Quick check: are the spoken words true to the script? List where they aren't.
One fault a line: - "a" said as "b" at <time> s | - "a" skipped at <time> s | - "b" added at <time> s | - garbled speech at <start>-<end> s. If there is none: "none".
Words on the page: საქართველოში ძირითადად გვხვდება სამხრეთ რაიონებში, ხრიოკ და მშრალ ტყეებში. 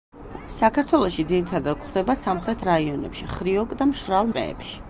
none